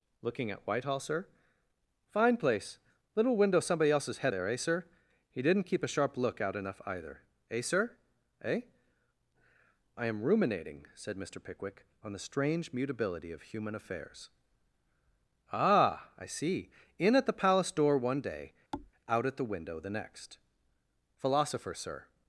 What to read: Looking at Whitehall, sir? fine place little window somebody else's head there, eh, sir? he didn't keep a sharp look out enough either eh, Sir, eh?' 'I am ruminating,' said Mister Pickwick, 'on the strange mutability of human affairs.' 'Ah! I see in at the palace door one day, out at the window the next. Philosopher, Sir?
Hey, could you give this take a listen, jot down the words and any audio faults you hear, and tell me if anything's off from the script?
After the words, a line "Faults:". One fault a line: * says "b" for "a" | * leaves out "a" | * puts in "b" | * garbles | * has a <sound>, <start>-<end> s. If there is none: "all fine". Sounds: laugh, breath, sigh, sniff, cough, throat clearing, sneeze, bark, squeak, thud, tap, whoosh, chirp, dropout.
Looking at Whitehall, sir? fine place little window somebody else's head there, eh, sir? he didn't keep a sharp look out enough either eh, Sir, eh?' 'I am ruminating,' said Mister Pickwick, 'on the strange mutability of human affairs.' 'Ah! I see in at the palace door one day, out at the window the next. Philosopher, Sir?
Faults:
* has a thud, 18.7-18.9 s